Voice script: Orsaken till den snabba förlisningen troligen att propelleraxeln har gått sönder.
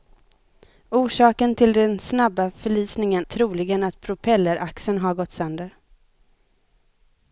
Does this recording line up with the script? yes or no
yes